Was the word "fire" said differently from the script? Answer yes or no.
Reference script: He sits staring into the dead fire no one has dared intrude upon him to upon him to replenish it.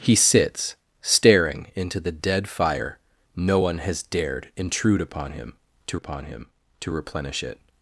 no